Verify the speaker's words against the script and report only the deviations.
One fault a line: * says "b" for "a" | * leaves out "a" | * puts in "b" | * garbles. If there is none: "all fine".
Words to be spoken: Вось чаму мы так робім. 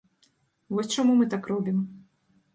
all fine